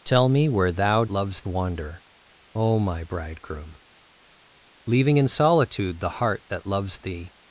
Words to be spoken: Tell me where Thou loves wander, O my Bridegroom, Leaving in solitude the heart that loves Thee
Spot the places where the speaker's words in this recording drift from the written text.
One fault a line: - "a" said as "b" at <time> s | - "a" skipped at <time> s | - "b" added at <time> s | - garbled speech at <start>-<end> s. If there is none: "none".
none